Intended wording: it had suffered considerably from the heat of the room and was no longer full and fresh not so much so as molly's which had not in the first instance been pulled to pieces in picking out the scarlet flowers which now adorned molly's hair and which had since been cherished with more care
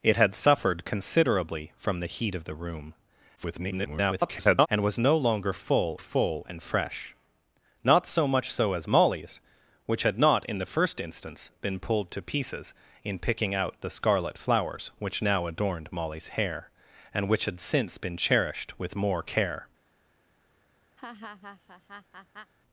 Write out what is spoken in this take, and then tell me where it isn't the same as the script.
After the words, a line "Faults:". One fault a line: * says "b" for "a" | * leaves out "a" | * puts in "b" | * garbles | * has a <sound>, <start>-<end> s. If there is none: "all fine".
it had suffered considerably from the heat of the room [garbled] and was no longer full full and fresh not so much so as molly's which had not in the first instance been pulled to pieces in picking out the scarlet flowers which now adorned molly's hair and which had since been cherished with more care
Faults:
* garbles
* puts in "full"
* has a laugh, 21.0-22.5 s